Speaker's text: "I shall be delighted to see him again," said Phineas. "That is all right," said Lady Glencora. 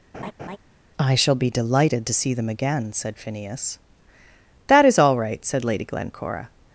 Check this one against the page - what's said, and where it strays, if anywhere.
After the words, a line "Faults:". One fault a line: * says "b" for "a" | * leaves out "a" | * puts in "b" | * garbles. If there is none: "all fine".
"I shall be delighted to see them again," said Phineas. "That is all right," said Lady Glencora.
Faults:
* says "them" for "him"